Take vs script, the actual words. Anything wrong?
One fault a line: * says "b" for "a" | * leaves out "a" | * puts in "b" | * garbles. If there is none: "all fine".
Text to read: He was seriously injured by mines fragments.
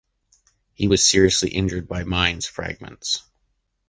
all fine